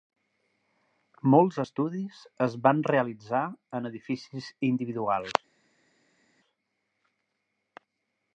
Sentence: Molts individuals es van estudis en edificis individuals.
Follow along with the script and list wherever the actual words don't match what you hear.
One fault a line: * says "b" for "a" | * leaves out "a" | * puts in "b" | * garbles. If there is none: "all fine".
* says "estudis" for "individuals"
* says "realitzar" for "estudis"